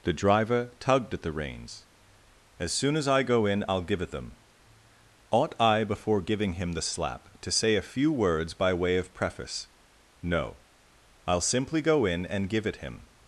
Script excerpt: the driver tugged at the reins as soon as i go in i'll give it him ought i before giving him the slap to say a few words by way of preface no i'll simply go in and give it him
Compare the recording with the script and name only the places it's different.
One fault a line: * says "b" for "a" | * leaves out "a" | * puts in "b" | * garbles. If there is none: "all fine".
* says "them" for "him"